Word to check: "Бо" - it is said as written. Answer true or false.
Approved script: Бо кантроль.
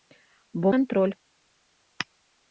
true